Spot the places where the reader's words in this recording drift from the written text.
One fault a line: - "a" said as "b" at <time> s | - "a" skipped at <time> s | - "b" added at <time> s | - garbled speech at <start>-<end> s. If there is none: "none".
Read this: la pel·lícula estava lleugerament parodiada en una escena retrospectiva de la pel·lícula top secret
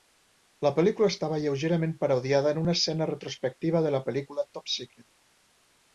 none